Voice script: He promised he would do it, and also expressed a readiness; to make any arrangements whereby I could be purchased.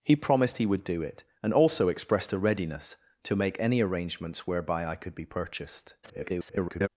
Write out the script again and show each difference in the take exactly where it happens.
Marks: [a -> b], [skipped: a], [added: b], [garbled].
He promised he would do it, and also expressed a readiness; to make any arrangements whereby I could be purchased. [garbled]